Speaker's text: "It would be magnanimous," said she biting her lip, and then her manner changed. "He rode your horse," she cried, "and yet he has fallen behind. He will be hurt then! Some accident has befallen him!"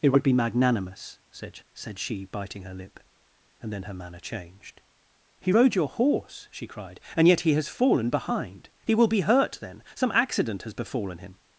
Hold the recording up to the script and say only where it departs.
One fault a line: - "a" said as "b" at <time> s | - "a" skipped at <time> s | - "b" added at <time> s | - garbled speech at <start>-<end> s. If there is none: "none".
- "said" added at 1.7 s